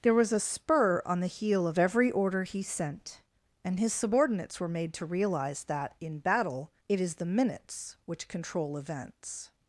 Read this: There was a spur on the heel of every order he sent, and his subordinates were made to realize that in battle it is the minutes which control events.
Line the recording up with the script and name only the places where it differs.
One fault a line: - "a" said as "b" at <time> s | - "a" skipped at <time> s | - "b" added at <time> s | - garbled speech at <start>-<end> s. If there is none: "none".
none